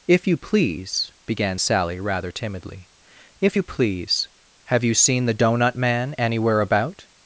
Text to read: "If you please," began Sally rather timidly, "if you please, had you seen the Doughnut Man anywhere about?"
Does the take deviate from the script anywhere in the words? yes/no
yes